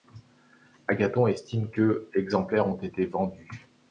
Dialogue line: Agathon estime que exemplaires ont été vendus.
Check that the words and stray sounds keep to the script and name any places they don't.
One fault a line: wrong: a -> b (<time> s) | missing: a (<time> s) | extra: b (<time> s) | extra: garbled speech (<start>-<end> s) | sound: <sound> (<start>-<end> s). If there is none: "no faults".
no faults